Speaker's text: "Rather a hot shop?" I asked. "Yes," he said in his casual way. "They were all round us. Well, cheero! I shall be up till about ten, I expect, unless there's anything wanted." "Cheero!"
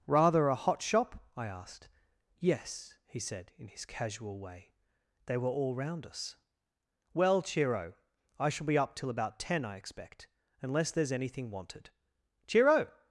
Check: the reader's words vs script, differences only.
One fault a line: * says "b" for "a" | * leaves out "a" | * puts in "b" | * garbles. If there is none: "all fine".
all fine